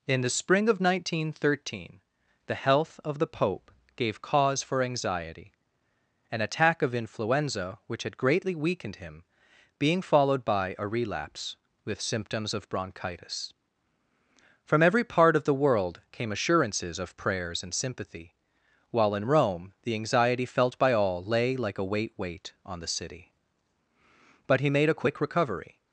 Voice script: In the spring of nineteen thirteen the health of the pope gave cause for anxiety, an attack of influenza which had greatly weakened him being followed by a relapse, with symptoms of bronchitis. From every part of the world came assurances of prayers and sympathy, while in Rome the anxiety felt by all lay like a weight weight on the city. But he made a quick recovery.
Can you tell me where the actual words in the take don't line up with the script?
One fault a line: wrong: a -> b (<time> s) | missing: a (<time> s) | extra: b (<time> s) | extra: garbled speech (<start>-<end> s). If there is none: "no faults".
no faults